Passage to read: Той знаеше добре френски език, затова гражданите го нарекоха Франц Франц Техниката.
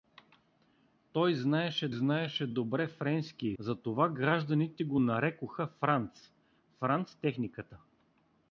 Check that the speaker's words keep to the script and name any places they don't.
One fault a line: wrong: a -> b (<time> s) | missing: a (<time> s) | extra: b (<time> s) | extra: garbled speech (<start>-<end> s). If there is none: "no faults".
extra: знаеше (1.9 s)
missing: език (3.5 s)